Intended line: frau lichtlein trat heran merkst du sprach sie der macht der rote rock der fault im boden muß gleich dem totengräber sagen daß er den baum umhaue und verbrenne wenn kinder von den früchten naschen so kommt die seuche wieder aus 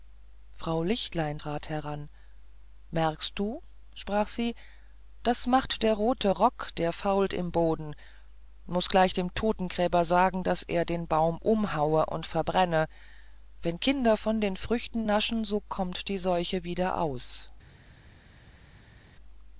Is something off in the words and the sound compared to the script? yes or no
yes